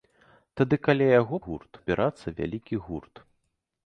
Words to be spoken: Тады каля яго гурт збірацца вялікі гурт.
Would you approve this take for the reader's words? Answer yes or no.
yes